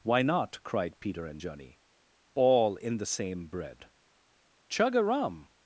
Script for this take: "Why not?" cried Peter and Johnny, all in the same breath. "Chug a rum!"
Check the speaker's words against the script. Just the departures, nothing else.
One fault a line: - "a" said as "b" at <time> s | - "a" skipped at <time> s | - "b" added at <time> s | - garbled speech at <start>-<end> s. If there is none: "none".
- "breath" said as "bread" at 3.5 s